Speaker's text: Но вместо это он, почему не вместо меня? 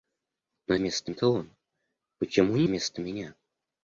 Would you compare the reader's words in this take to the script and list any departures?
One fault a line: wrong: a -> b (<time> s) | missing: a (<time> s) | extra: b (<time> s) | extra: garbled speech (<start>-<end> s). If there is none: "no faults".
no faults